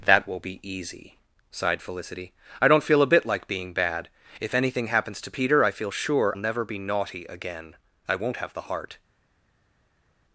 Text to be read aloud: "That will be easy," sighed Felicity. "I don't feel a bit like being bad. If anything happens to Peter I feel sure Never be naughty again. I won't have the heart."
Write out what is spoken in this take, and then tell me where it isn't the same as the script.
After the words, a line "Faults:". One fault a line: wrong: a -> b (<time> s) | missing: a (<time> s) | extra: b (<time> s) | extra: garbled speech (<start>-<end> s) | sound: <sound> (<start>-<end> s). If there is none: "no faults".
"That will be easy," sighed Felicity. "I don't feel a bit like being bad. If anything happens to Peter I feel sure Never be naughty again. I won't have the heart."
Faults:
no faults